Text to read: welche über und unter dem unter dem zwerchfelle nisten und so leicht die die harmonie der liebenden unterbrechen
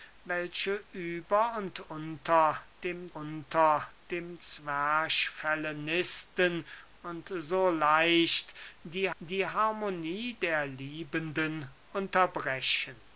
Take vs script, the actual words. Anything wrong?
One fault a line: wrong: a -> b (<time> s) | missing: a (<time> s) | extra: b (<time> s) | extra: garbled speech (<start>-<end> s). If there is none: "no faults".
no faults